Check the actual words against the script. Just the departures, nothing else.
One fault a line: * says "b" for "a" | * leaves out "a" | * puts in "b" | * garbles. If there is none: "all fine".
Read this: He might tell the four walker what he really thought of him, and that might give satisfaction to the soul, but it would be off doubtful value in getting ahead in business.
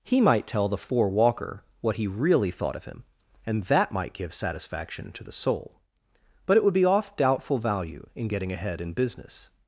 all fine